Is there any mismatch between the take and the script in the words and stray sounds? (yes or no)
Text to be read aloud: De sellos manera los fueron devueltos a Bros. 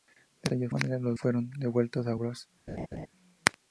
yes